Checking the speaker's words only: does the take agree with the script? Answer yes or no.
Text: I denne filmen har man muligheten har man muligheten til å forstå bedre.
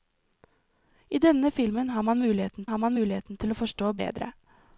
yes